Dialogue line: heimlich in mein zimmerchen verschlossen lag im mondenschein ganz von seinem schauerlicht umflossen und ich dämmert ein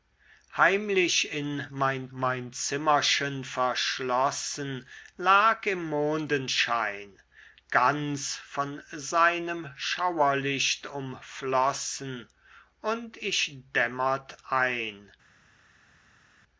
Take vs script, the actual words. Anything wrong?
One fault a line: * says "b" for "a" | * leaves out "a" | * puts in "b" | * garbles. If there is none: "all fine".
* puts in "mein"